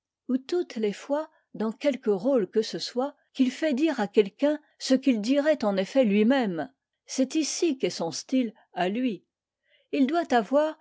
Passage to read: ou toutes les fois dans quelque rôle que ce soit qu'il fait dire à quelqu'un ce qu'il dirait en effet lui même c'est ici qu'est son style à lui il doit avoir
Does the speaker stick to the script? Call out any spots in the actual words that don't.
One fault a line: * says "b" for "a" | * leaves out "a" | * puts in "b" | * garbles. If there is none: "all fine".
all fine